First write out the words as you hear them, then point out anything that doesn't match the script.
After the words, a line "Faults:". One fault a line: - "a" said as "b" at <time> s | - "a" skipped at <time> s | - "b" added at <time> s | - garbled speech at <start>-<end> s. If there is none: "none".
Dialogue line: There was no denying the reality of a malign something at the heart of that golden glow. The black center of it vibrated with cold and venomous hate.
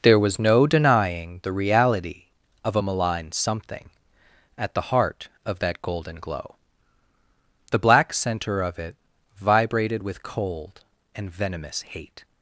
There was no denying the reality of a malign something at the heart of that golden glow. The black center of it vibrated with cold and venomous hate.
Faults:
none